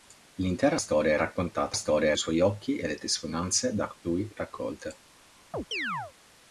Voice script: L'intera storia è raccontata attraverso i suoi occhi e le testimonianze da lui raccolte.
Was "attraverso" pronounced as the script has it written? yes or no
no